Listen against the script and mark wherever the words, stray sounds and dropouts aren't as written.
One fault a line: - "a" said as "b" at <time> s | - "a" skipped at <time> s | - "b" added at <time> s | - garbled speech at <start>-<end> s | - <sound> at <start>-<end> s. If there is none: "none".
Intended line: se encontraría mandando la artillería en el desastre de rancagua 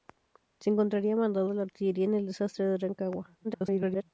- garbled speech at 3.4-4.0 s